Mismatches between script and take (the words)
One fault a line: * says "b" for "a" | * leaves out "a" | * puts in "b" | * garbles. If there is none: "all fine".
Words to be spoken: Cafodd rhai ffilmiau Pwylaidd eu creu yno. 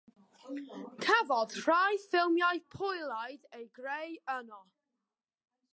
all fine